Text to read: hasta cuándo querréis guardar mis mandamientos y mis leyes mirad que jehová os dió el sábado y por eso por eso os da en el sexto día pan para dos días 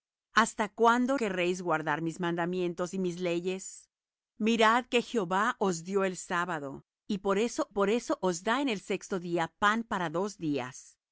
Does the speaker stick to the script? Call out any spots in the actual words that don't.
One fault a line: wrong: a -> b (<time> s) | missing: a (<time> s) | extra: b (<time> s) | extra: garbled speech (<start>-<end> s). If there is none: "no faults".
no faults